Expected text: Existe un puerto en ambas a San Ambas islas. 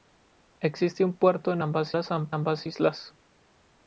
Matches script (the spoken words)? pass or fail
pass